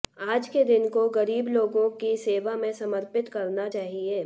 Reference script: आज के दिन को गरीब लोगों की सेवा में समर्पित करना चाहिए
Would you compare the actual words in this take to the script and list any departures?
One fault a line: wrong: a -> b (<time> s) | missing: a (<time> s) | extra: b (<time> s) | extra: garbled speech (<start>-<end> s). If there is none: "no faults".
no faults